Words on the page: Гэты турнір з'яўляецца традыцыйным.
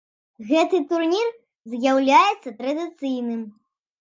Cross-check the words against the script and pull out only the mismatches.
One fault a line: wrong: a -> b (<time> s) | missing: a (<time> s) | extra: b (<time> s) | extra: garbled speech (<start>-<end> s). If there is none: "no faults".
no faults